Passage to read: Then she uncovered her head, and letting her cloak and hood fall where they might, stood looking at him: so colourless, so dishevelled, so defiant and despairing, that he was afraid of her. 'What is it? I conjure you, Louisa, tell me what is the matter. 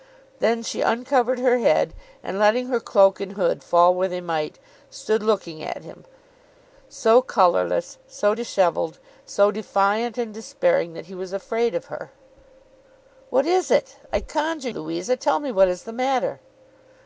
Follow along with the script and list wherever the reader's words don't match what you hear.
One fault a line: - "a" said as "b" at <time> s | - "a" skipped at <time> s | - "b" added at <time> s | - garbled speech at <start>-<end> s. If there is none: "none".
- "you" skipped at 14.7 s